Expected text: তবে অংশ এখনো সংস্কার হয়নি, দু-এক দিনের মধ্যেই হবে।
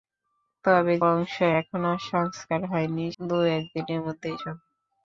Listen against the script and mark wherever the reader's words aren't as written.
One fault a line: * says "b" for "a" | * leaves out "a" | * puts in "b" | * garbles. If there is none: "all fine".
all fine